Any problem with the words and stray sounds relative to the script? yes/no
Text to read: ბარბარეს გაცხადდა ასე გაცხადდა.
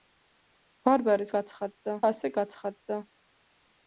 no